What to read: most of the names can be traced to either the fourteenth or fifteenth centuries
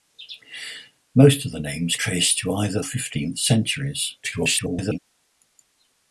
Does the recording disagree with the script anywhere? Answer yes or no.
yes